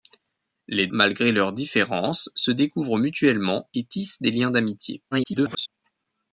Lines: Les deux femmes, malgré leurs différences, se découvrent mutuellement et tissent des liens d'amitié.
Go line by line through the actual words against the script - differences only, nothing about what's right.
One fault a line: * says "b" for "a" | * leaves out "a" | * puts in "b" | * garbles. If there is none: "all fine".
* leaves out "deux femmes"
* garbles